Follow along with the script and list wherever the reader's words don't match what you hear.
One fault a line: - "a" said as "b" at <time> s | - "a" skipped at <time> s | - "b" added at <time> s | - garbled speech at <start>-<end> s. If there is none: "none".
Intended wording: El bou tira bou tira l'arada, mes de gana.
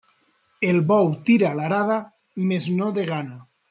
- "bou tira" skipped at 1.5 s
- "no" added at 2.8 s